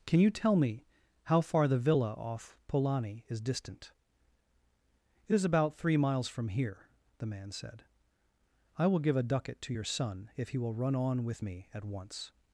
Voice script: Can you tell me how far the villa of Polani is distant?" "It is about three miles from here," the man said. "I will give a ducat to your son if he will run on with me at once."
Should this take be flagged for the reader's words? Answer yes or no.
yes